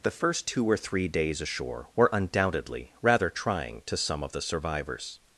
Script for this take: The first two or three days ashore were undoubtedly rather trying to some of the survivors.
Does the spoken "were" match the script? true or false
true